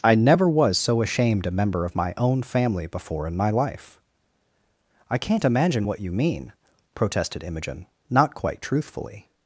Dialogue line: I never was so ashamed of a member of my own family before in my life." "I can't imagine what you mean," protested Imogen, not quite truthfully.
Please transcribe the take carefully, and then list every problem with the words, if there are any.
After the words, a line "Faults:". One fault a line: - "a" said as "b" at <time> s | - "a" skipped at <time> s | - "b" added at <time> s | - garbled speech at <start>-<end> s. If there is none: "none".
I never was so ashamed a member of my own family before in my life." "I can't imagine what you mean," protested Imogen, not quite truthfully.
Faults:
- "of" skipped at 1.4 s